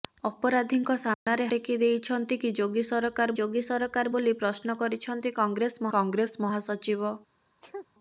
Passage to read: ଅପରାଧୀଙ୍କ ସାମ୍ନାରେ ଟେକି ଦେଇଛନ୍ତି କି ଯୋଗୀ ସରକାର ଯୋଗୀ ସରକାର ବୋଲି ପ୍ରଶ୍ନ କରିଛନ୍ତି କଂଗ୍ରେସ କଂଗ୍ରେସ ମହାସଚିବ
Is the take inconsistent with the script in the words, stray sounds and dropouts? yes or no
yes